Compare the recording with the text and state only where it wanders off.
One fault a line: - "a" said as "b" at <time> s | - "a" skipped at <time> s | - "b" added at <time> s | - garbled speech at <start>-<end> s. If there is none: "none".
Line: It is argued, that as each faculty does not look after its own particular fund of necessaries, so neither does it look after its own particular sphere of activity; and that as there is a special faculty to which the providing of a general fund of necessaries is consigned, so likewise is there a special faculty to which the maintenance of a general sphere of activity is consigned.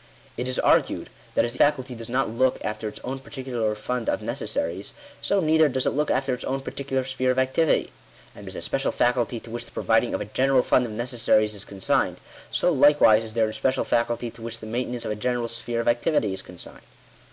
- "each" skipped at 1.6 s
- "that as there" skipped at 8.5 s